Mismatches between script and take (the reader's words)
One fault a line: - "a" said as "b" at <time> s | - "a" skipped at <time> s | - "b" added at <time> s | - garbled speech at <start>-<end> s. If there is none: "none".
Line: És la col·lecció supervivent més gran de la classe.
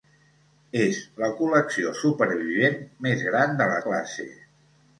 none